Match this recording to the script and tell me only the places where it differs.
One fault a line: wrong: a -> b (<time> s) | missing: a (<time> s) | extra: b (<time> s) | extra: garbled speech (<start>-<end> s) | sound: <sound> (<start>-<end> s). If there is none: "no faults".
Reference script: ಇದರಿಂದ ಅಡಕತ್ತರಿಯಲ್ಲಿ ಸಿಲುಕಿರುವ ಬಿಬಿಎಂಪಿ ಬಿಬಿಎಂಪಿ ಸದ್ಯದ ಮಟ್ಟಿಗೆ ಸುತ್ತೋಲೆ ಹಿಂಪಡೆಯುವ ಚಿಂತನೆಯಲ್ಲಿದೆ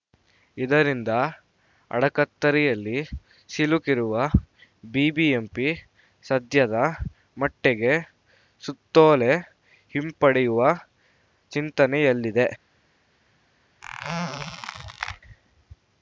missing: ಬಿಬಿಎಂಪಿ (5.7 s)
sound: squeak (13.8-15.2 s)